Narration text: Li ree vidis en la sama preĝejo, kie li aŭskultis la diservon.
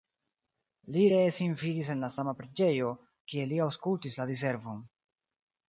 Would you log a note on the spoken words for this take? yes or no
yes